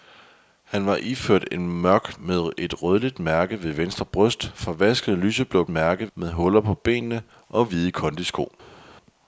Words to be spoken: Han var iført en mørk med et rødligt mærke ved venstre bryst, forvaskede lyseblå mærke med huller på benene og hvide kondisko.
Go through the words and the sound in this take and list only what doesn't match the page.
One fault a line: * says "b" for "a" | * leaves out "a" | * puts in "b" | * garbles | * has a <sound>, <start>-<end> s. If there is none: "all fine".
all fine